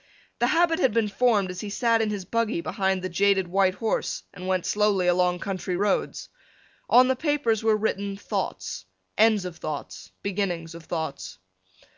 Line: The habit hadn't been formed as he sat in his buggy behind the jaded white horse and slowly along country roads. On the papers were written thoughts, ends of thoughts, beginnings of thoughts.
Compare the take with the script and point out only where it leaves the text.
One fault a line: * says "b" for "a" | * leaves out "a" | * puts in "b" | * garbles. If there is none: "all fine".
* says "had" for "hadn't"
* puts in "went"